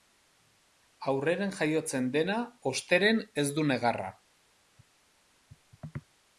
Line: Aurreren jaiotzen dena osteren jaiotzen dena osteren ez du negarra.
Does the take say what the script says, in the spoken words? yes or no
no